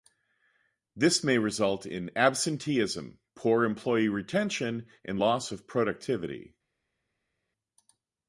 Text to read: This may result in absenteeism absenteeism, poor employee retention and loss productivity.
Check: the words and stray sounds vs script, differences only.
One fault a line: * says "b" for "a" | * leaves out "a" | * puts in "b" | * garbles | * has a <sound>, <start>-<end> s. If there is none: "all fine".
* leaves out "absenteeism"
* puts in "of"